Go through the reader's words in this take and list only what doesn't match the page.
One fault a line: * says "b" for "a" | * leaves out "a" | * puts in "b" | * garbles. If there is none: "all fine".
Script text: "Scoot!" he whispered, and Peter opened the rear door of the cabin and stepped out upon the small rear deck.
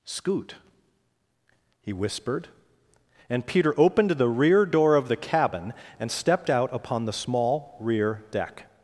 all fine